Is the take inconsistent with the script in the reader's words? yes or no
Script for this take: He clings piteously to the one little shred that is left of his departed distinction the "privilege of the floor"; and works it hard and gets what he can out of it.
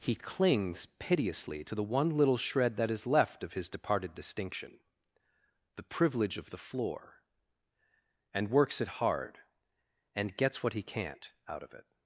yes